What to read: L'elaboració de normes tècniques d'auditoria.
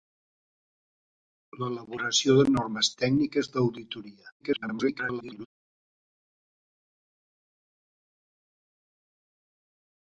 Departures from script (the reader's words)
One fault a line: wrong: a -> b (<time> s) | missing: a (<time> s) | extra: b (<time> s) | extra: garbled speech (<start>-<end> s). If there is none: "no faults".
extra: garbled speech (4.4-5.5 s)